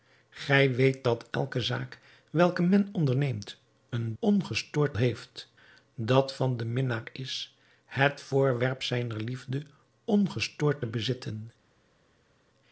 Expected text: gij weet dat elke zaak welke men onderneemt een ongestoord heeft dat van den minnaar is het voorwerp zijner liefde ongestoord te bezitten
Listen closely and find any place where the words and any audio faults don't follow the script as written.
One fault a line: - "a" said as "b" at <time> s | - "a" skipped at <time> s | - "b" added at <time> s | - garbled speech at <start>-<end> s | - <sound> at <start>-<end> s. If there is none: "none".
none